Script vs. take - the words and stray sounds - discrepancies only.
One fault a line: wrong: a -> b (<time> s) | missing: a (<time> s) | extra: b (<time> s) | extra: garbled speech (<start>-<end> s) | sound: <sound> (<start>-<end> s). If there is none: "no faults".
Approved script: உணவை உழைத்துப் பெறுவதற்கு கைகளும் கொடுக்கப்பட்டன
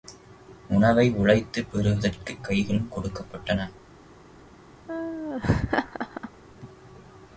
sound: laugh (4.9-6.3 s)